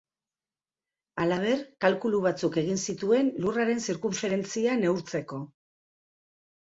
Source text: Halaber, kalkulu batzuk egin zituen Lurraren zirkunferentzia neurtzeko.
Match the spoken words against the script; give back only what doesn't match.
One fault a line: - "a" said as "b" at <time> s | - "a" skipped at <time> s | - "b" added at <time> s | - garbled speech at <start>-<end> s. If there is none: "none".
none